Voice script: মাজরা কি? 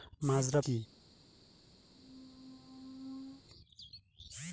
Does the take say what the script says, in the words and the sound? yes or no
no